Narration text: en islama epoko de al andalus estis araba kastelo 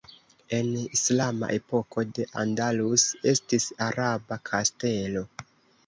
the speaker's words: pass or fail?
fail